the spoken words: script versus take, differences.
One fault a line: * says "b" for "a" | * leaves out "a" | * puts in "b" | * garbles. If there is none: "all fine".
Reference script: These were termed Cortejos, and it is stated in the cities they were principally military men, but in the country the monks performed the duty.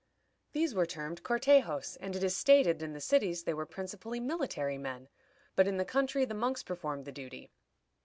all fine